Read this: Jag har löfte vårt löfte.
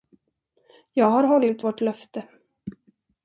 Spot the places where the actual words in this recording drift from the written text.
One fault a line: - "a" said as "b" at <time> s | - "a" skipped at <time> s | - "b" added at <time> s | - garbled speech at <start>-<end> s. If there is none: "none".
- "löfte" said as "hållit" at 1.2 s